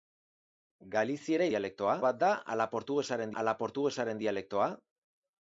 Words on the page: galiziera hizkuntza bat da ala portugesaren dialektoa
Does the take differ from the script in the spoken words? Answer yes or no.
yes